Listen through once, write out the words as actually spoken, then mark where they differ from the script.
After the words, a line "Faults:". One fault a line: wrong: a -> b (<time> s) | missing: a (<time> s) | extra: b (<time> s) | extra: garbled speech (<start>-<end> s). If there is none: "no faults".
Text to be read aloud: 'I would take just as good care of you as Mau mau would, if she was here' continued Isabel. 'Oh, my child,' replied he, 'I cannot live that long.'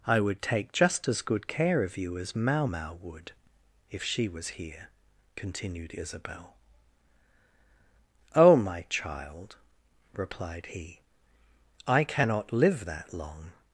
'I would take just as good care of you as Mau mau would, if she was here' continued Isabel. 'Oh, my child,' replied he, 'I cannot live that long.'
Faults:
no faults